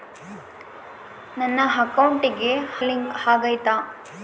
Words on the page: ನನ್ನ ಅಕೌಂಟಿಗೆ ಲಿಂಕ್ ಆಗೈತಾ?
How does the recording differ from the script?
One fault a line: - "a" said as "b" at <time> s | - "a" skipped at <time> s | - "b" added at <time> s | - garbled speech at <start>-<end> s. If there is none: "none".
none